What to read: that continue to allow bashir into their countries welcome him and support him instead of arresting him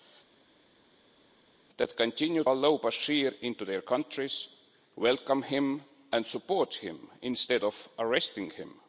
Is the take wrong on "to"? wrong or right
wrong